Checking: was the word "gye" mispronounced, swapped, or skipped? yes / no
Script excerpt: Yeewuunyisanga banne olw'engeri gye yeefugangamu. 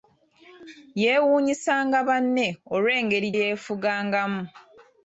yes